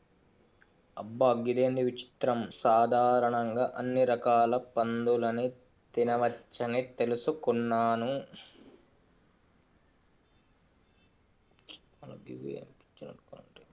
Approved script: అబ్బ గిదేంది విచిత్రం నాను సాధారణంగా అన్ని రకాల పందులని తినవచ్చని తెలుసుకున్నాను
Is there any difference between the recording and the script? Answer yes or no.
yes